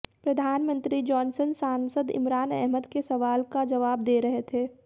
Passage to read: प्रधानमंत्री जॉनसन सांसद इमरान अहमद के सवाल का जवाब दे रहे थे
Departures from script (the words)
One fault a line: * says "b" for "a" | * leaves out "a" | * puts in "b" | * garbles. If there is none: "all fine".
all fine